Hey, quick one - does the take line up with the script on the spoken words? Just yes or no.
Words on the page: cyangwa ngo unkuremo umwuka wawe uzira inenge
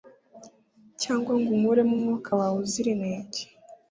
yes